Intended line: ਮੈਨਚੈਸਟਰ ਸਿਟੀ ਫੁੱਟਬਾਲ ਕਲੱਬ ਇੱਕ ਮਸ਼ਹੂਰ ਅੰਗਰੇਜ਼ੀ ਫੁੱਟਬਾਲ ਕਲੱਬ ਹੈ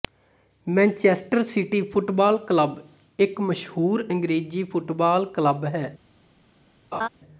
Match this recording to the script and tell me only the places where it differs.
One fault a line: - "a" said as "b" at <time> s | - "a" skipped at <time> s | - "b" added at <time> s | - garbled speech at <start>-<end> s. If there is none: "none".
none